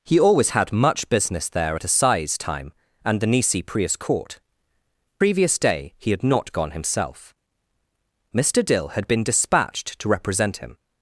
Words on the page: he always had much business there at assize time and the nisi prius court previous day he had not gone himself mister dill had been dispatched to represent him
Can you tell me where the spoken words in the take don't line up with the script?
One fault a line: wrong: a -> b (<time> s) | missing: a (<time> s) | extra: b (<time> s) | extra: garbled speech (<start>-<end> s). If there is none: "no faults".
no faults